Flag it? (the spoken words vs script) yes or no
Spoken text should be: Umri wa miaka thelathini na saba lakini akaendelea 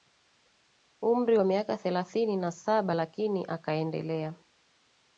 no